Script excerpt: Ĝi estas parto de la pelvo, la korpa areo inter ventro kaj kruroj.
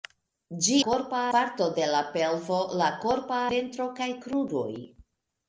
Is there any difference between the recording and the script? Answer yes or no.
yes